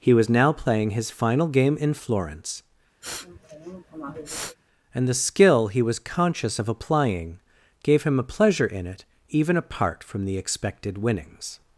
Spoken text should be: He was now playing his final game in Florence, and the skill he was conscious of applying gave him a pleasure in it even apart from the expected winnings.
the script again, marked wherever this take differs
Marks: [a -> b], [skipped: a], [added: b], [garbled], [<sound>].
He was now playing his final game in Florence, [sniff] and the skill he was conscious of applying gave him a pleasure in it even apart from the expected winnings.